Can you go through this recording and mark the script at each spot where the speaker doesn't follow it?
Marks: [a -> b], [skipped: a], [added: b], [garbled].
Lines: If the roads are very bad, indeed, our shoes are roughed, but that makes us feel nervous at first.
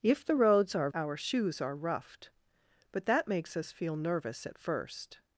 If the roads are [skipped: very bad, indeed,] our shoes are roughed, but that makes us feel nervous at first.